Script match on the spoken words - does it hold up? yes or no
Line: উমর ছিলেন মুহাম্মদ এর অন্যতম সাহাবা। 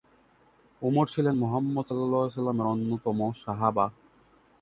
yes